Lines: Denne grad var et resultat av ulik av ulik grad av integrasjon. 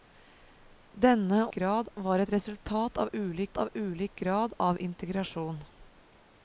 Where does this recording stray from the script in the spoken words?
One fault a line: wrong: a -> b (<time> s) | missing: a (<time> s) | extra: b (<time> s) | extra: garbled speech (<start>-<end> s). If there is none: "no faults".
no faults